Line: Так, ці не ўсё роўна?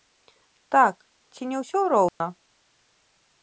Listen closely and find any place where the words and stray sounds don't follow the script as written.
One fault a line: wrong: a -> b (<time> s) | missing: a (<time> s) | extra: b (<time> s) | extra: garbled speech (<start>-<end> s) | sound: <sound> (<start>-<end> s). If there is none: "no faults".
sound: dropout (2.1-2.2 s)